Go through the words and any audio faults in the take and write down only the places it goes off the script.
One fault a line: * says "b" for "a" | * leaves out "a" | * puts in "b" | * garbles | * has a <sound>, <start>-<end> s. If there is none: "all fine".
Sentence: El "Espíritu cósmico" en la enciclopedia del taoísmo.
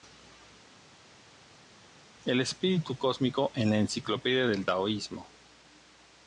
all fine